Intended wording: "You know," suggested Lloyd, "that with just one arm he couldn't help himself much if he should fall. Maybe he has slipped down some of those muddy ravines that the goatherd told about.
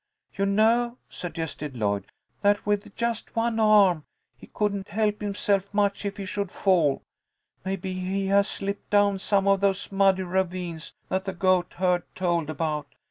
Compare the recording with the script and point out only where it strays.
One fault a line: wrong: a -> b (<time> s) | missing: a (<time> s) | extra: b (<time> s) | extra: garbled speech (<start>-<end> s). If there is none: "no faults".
no faults